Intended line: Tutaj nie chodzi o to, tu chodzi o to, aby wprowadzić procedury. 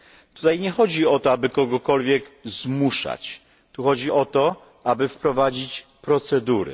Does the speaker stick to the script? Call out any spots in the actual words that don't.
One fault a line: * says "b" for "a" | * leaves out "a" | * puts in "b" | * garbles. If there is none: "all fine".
* puts in "aby kogokolwiek zmuszać"